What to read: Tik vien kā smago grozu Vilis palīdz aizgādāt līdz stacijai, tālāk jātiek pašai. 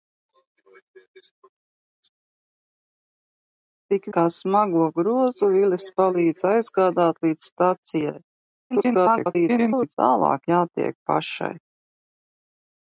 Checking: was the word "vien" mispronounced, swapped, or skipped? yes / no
yes